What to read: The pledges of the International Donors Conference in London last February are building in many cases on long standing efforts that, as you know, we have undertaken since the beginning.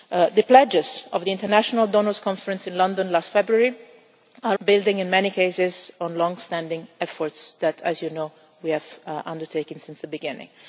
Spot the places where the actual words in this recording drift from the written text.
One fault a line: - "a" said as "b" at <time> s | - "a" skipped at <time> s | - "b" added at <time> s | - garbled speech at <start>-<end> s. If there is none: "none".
none